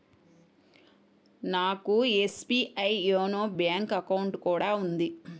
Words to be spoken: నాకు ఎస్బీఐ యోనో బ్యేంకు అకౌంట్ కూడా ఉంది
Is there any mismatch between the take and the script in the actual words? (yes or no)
no